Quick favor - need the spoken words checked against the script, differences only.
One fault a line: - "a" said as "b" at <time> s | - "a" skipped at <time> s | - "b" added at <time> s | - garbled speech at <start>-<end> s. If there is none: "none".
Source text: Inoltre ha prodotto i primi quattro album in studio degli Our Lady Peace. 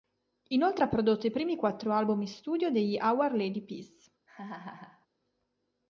none